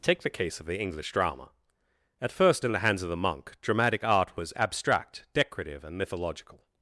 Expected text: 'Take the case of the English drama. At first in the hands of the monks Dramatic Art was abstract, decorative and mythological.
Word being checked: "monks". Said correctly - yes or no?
no